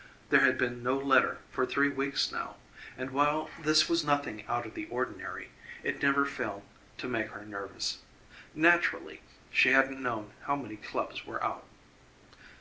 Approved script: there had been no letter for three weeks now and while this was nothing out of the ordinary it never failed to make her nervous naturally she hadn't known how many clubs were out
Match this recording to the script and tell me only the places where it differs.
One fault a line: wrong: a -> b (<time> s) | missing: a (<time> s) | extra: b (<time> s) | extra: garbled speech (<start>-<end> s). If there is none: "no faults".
no faults